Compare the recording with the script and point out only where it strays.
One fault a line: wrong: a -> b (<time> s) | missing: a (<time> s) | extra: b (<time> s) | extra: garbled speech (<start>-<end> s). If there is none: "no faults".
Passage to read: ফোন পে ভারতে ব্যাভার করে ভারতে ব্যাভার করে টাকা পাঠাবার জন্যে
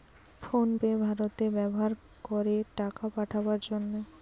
missing: ভারতে ব্যাভার করে (2.5 s)